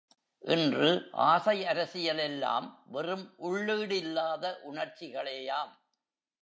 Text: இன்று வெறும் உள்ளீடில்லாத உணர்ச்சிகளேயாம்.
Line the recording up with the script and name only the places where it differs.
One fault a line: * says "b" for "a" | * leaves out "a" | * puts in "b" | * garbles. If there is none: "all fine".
* puts in "ஆசை அரசியல் எல்லாம்"